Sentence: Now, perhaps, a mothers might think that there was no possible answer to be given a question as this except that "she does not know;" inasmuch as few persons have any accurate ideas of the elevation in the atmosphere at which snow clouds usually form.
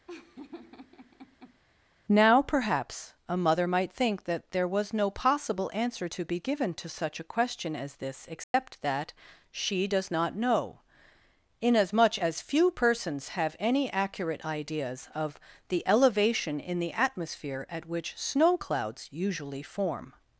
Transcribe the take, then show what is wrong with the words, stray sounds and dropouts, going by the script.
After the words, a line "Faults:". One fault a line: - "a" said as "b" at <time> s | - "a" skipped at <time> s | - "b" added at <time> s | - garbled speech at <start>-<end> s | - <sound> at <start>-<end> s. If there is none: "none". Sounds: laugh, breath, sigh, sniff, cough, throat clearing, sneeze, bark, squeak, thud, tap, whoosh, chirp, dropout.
Now, perhaps, a mother might think that there was no possible answer to be given to such a question as this except that "she does not know;" inasmuch as few persons have any accurate ideas of the elevation in the atmosphere at which snow clouds usually form.
Faults:
- laugh at 0.1-1.6 s
- "mothers" said as "mother" at 3.4 s
- "to such" added at 6.7 s
- dropout at 8.4-8.5 s